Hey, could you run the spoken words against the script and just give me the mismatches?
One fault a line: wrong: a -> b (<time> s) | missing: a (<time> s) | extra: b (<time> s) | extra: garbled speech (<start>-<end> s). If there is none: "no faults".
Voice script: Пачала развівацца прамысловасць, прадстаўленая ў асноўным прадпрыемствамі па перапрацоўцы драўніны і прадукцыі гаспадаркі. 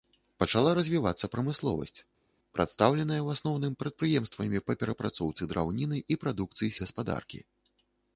no faults